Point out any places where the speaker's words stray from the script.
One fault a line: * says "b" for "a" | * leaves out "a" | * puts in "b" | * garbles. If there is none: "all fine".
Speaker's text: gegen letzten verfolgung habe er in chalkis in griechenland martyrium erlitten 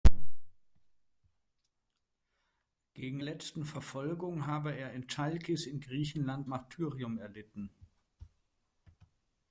all fine